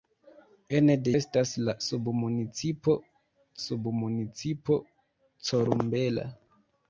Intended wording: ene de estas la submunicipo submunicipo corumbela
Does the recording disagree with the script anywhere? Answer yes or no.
no